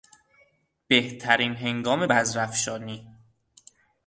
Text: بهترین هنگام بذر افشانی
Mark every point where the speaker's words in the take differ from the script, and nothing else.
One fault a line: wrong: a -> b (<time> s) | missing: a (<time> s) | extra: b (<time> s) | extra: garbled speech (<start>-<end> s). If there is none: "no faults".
no faults